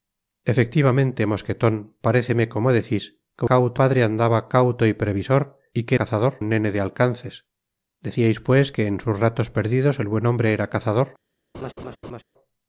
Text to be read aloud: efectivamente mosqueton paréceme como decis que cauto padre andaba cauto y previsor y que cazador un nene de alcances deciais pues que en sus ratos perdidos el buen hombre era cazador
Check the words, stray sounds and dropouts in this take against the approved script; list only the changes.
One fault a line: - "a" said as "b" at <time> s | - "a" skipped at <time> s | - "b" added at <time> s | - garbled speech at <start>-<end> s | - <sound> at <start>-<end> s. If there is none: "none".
- laugh at 11.5-12.2 s